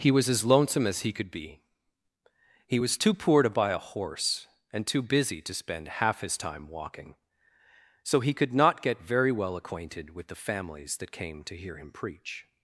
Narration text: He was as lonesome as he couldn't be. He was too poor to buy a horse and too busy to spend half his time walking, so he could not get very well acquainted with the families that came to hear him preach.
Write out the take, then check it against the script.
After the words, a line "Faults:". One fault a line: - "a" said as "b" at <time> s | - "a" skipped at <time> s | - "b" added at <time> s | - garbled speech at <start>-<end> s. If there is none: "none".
He was as lonesome as he could be. He was too poor to buy a horse and too busy to spend half his time walking, so he could not get very well acquainted with the families that came to hear him preach.
Faults:
- "couldn't" said as "could" at 1.1 s